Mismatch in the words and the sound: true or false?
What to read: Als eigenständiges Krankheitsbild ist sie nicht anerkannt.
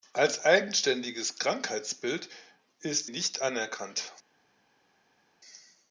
true